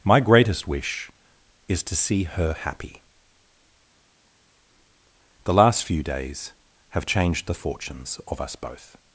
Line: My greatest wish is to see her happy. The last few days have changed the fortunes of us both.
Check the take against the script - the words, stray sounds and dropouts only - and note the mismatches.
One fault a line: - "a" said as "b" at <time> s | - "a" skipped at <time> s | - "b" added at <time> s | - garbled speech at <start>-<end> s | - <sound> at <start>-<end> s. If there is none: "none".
none